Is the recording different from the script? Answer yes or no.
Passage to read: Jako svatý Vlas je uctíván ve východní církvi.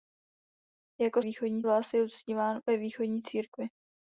yes